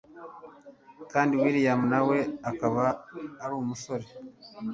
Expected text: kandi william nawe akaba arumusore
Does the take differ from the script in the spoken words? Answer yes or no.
no